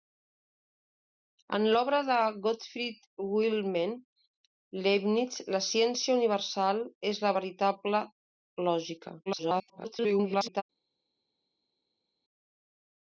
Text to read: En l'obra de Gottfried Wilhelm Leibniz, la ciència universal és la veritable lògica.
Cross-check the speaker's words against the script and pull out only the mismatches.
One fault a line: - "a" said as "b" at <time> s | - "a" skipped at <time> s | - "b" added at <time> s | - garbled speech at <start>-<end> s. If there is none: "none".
- garbled speech at 9.3-10.6 s